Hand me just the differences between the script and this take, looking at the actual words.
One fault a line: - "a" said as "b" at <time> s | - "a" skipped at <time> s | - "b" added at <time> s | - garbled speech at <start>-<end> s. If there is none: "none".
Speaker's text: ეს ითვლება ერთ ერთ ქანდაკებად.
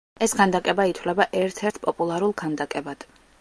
- "ქანდაკება" added at 0.4 s
- "პოპულარულ" added at 1.9 s